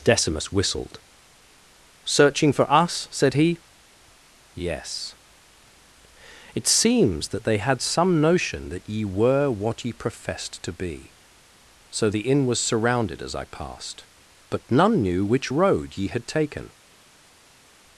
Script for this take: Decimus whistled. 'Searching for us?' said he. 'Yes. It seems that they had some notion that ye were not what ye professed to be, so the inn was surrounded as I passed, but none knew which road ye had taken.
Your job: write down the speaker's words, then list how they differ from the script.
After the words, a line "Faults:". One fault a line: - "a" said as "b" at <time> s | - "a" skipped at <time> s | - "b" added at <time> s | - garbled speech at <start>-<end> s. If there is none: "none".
Decimus whistled. 'Searching for us?' said he. 'Yes. It seems that they had some notion that ye were what ye professed to be, so the inn was surrounded as I passed, but none knew which road ye had taken.
Faults:
- "not" skipped at 9.5 s